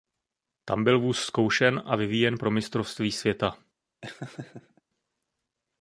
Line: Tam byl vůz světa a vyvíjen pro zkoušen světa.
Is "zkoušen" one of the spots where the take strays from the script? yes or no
yes